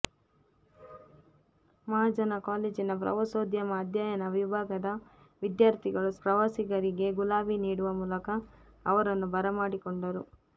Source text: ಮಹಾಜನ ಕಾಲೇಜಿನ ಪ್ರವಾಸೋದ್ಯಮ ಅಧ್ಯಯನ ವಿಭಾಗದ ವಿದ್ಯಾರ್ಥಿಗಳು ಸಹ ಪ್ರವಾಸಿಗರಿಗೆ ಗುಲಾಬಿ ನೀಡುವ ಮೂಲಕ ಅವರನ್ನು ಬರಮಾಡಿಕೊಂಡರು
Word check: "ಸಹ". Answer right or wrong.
wrong